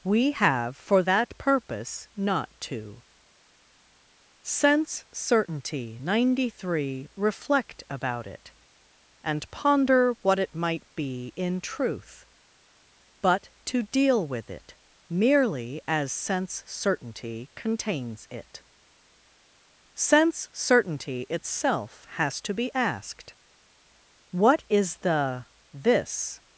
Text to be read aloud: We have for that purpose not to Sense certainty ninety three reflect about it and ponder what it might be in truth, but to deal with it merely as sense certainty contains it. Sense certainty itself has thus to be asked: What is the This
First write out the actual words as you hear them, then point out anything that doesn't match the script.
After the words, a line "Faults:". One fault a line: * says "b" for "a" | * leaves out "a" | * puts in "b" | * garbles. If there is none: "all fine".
We have for that purpose not to Sense certainty ninety three reflect about it and ponder what it might be in truth, but to deal with it merely as sense certainty contains it. Sense certainty itself has to be asked: What is the This
Faults:
* leaves out "thus"